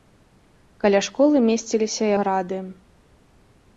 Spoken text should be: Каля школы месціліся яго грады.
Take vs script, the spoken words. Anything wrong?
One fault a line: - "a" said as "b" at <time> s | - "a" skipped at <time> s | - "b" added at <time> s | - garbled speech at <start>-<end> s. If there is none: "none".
- "яго" skipped at 2.1 s